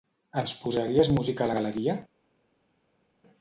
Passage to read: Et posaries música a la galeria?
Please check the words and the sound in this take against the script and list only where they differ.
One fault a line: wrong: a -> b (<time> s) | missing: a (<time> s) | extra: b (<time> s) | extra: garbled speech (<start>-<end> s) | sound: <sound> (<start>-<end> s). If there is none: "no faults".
wrong: Et -> Ens (0.4 s)